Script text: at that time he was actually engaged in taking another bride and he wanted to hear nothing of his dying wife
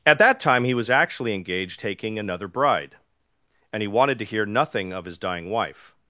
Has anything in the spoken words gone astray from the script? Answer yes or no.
yes